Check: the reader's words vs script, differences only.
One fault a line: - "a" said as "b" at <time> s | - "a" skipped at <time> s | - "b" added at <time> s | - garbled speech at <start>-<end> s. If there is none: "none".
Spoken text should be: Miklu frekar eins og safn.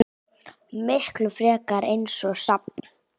none